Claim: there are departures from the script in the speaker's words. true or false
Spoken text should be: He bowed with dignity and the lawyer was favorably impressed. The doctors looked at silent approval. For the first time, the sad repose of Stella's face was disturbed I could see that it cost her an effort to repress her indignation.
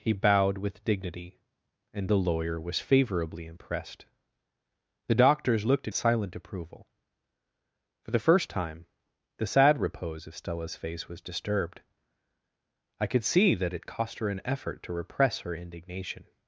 false